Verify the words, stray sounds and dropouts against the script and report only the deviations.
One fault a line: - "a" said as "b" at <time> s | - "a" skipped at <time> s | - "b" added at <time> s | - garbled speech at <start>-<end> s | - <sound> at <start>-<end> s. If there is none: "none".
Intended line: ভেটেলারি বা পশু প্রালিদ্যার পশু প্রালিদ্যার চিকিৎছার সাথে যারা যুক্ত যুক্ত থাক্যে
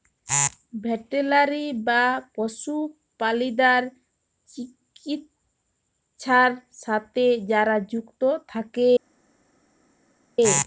- "পশু প্রালিদ্যার" skipped at 3.8 s
- "যুক্ত" skipped at 8.2 s